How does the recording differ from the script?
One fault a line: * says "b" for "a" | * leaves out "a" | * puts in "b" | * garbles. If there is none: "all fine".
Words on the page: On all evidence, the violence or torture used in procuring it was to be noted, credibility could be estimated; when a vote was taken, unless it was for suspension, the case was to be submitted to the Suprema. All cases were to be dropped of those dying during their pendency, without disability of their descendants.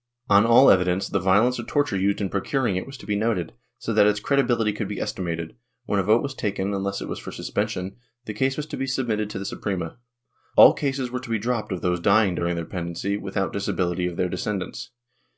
* puts in "so that its"